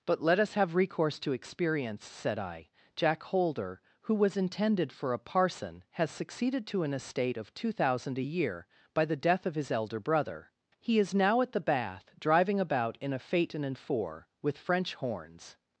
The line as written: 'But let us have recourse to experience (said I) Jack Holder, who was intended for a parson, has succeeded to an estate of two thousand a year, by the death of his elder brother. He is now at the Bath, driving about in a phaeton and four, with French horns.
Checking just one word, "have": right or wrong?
right